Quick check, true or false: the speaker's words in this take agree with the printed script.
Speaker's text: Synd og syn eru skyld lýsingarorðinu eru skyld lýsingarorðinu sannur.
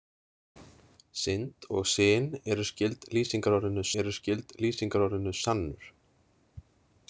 true